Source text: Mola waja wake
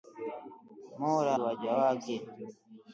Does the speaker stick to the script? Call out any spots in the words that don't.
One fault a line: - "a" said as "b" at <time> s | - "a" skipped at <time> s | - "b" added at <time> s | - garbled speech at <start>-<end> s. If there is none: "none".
none